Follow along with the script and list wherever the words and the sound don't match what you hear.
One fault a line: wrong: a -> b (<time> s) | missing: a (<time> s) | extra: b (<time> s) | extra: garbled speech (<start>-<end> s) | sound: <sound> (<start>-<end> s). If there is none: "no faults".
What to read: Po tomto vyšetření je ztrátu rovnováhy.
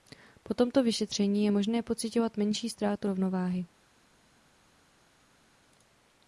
extra: možné pociťovat menší (1.5 s)